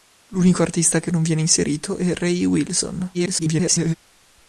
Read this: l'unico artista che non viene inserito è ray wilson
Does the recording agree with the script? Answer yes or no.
no